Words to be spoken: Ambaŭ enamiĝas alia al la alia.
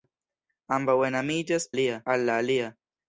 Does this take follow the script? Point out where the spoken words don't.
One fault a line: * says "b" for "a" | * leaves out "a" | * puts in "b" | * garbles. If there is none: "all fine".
all fine